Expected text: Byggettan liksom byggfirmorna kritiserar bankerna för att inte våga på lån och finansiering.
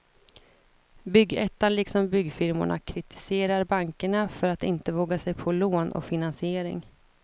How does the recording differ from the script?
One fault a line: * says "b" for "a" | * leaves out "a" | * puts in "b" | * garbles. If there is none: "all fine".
* puts in "sig"